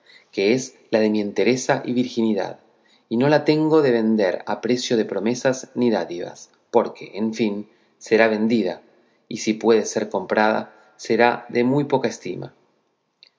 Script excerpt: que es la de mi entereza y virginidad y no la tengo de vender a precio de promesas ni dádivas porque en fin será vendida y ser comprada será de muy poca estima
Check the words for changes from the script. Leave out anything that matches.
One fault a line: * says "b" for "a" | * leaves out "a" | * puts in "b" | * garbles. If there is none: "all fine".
* puts in "si puede"